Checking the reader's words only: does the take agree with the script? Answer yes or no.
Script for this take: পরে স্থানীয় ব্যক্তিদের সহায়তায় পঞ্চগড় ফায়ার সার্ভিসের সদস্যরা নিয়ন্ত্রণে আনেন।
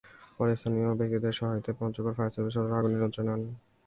no